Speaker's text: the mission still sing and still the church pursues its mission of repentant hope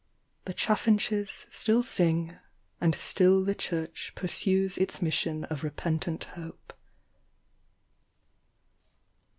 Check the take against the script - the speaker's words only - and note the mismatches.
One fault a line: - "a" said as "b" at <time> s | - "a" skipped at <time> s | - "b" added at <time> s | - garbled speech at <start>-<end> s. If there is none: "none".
- "mission" said as "chaffinches" at 0.6 s